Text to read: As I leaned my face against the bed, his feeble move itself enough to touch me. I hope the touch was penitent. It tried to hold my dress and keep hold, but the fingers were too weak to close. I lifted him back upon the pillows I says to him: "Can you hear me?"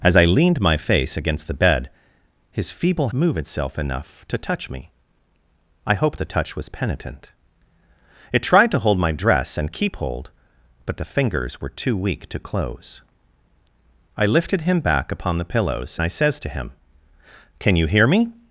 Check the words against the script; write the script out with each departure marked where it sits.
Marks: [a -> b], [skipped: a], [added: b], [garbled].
As I leaned my face against the bed, his feeble move itself enough to touch me. I hope the touch was penitent. It tried to hold my dress and keep hold, but the fingers were too weak to close. I lifted him back upon the pillows I says to him: "Can you hear me?"